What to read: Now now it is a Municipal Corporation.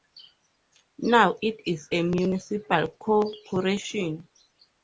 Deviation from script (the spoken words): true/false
true